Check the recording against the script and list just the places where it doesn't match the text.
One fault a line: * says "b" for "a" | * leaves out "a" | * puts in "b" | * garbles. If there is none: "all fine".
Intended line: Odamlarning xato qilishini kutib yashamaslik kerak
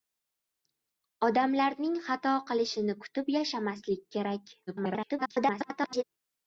* garbles